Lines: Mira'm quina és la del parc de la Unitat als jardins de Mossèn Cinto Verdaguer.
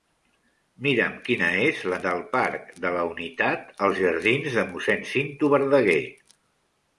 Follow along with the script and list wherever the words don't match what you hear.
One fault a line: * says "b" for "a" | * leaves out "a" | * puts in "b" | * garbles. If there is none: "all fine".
all fine